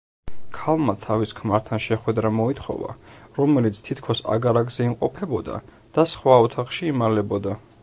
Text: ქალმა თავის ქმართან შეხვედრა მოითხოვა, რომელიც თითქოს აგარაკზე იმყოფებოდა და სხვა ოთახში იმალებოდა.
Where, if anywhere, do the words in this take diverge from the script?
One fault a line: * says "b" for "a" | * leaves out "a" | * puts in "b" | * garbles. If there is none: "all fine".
all fine